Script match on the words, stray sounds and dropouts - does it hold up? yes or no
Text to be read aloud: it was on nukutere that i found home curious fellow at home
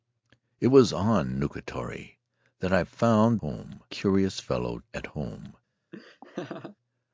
no